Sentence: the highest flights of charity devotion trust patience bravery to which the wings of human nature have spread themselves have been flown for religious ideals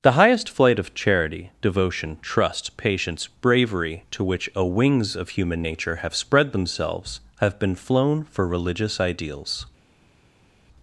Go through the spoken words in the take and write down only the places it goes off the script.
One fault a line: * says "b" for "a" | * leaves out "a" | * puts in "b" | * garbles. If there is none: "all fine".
* says "flight" for "flights"
* says "a" for "the"